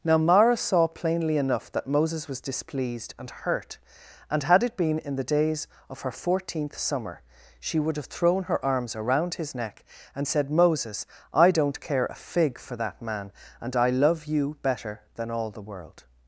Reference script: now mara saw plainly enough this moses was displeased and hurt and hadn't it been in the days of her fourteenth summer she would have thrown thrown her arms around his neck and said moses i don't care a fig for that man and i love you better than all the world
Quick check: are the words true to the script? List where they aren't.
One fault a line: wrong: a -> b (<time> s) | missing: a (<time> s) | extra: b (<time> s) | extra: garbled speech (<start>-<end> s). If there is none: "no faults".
wrong: this -> that (1.7 s)
wrong: hadn't -> had (4.4 s)
missing: thrown (8.4 s)